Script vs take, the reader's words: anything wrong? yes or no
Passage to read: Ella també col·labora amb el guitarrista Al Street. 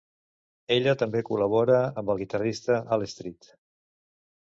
no